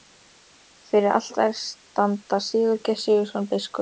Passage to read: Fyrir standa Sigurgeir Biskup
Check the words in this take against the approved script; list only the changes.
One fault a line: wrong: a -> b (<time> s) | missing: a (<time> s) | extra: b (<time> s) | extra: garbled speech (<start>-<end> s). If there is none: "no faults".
extra: altari (1.2 s)
extra: Sigurðsson (3.1 s)